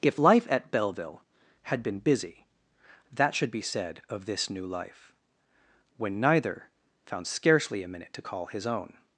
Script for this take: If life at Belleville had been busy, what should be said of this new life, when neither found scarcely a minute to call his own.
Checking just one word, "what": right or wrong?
wrong